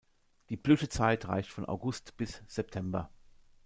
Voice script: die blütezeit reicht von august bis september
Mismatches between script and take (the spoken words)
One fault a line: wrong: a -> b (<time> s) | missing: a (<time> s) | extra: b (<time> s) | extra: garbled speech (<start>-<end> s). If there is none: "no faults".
no faults